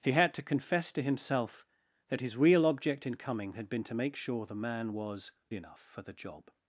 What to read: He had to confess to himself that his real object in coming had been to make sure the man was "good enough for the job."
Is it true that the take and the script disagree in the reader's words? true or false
true